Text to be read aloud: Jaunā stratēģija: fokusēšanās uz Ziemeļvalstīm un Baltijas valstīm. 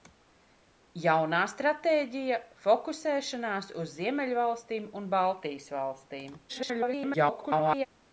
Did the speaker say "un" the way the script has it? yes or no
yes